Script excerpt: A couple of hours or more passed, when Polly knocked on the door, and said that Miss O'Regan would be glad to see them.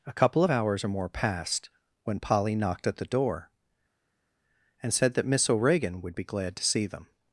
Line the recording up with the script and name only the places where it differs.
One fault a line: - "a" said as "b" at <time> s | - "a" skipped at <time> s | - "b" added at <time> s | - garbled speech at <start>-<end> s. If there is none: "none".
- "on" said as "at" at 2.9 s